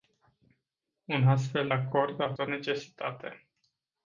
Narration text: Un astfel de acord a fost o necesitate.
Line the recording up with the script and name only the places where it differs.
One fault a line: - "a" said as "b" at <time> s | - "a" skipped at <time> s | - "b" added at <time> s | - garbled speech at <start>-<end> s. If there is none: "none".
- "de" skipped at 1.7 s
- "fost" skipped at 2.4 s